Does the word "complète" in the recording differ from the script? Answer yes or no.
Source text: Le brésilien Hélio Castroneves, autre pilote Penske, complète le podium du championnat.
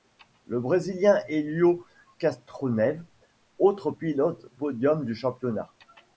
yes